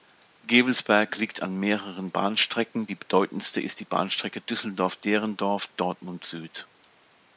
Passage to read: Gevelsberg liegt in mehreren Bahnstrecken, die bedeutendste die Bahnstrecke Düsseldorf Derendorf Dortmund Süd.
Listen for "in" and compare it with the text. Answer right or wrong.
wrong